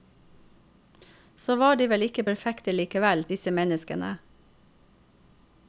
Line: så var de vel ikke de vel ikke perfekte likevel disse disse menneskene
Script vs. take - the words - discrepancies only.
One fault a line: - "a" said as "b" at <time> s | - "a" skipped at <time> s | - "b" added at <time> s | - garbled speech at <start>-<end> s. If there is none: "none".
- "de vel ikke" skipped at 2.2 s
- "disse" skipped at 3.5 s